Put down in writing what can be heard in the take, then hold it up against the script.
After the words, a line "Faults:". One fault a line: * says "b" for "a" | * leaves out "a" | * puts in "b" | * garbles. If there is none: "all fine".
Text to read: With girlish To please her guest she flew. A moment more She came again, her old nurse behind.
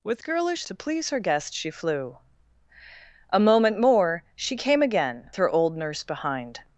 With girlish To please her guest she flew. A moment more She came again, her old nurse behind.
Faults:
all fine